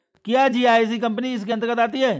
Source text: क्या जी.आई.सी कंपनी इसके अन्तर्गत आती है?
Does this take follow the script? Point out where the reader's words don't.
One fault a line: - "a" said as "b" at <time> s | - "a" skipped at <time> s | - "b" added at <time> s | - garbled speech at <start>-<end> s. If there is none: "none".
none